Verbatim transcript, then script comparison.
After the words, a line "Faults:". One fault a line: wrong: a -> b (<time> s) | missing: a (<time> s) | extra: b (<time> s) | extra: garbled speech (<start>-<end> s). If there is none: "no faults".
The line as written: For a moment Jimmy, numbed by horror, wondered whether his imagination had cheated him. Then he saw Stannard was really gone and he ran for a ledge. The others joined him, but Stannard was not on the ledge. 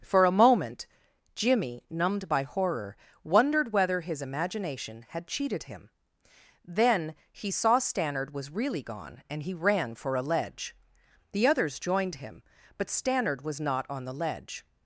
For a moment Jimmy, numbed by horror, wondered whether his imagination had cheated him. Then he saw Stannard was really gone and he ran for a ledge. The others joined him, but Stannard was not on the ledge.
Faults:
no faults